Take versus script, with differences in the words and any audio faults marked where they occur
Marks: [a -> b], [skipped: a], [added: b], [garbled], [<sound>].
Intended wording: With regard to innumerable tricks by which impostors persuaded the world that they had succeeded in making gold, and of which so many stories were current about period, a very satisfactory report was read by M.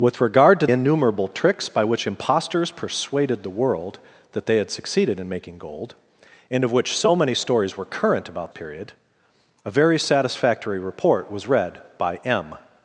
With regard to innumerable tricks by which impostors persuaded the world that they had succeeded in making gold, and of which so many stories were current about period, a very satisfactory report was read by M.